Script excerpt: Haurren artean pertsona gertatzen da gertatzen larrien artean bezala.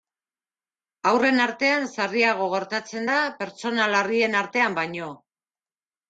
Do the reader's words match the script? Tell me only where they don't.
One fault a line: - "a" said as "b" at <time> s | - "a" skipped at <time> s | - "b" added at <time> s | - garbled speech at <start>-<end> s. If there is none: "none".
- "pertsona" said as "sarriago" at 2.0 s
- "gertatzen" said as "pertsona" at 3.4 s
- "bezala" said as "baino" at 4.8 s